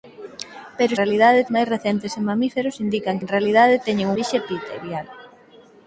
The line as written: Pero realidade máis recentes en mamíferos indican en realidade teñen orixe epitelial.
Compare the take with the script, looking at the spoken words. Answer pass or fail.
pass